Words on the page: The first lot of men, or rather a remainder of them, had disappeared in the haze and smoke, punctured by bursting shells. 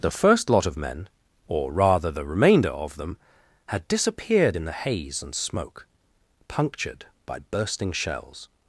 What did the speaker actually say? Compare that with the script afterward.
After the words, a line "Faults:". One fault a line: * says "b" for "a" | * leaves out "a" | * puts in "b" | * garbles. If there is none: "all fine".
The first lot of men, or rather the remainder of them, had disappeared in the haze and smoke, punctured by bursting shells.
Faults:
* says "the" for "a"